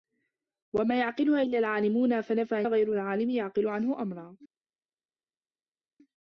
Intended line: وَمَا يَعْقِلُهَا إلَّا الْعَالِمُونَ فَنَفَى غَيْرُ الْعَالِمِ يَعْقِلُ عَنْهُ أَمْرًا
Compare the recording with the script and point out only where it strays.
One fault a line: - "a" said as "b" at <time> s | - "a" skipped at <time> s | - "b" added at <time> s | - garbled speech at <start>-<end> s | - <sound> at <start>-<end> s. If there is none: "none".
none